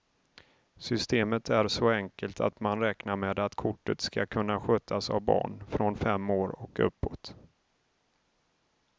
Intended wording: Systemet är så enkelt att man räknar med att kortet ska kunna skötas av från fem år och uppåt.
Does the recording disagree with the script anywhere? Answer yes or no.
yes